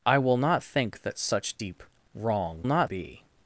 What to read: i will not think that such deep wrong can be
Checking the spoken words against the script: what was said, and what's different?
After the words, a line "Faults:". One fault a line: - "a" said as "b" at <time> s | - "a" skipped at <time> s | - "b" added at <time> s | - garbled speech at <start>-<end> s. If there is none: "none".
i will not think that such deep wrong not be
Faults:
- "can" said as "not" at 2.6 s